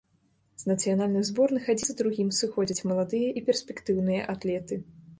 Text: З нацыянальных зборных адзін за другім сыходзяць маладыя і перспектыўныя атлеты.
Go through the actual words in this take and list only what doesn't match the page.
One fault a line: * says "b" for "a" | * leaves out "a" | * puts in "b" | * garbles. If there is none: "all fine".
all fine